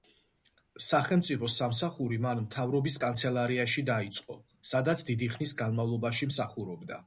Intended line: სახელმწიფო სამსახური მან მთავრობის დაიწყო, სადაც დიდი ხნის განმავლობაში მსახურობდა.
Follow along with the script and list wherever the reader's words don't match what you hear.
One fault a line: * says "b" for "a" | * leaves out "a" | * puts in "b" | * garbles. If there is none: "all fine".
* puts in "კანცელარიაში"